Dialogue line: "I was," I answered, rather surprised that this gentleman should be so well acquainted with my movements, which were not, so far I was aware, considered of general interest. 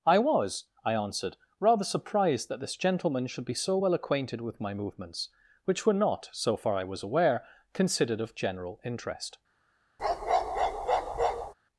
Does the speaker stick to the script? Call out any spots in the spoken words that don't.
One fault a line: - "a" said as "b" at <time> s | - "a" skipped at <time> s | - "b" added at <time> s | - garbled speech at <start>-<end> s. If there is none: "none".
none